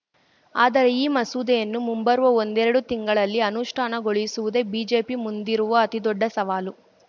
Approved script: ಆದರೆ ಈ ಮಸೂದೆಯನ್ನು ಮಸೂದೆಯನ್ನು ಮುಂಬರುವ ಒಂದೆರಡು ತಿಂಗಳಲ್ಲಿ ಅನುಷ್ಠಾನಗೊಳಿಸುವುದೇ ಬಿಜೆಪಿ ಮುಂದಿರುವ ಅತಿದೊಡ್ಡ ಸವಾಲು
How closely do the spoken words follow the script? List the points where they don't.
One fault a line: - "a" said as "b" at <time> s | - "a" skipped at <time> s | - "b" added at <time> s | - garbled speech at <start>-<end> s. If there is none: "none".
- "ಮಸೂದೆಯನ್ನು" skipped at 1.8 s